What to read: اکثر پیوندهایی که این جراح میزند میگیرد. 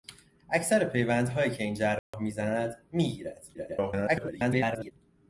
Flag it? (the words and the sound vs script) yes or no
yes